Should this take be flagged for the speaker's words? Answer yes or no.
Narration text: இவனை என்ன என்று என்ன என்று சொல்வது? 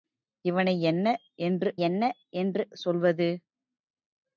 no